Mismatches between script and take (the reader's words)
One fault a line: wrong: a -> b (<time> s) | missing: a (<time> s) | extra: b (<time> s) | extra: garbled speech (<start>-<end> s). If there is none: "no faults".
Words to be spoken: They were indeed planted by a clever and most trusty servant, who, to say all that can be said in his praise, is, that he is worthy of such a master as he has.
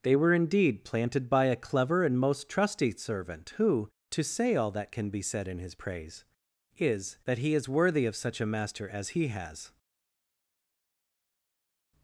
no faults